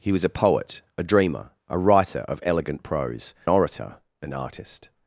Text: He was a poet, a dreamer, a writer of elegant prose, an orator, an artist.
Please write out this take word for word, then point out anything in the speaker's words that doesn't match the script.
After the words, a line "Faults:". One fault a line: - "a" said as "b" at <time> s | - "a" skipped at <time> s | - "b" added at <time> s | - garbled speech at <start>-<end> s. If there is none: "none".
He was a poet, a dreamer, a writer of elegant prose, orator, an artist.
Faults:
- "an" skipped at 3.3 s